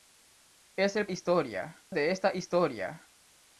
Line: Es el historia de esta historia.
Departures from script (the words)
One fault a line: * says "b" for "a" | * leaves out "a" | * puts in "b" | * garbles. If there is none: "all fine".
all fine